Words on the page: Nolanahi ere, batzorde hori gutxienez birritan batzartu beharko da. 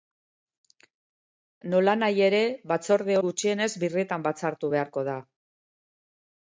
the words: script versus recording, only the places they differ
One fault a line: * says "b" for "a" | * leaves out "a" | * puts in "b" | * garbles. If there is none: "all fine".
* leaves out "hori"